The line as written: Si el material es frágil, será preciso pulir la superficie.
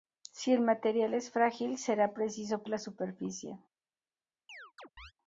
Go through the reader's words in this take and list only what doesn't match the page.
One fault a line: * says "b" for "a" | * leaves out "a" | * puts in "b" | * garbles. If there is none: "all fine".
* leaves out "pulir"